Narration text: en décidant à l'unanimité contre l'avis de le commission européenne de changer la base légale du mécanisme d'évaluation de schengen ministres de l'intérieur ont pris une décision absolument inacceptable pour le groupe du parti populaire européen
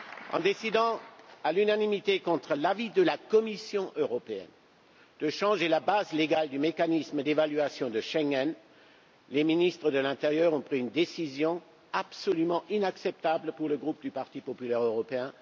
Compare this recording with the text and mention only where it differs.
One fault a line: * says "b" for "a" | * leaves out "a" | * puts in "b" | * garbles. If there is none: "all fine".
* says "la" for "le"
* puts in "les"